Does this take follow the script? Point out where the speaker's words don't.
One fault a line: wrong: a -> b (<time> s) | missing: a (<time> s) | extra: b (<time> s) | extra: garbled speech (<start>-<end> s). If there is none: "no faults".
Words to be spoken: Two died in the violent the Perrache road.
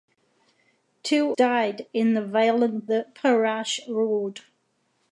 no faults